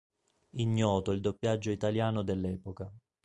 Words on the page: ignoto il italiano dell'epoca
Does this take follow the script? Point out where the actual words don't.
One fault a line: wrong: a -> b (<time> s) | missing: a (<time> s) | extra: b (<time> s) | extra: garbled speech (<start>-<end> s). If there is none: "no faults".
extra: doppiaggio (1.2 s)